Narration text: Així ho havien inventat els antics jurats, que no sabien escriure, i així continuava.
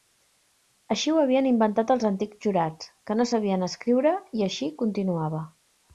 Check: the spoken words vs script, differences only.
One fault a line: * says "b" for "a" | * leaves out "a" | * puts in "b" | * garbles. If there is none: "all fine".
all fine